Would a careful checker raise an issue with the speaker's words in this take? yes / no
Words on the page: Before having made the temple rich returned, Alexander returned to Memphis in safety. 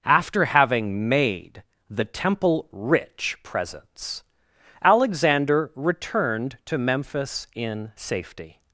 yes